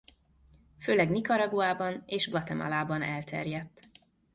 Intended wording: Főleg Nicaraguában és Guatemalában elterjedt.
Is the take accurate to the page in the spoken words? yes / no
yes